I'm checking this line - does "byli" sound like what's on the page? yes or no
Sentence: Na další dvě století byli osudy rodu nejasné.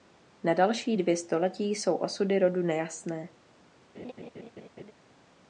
no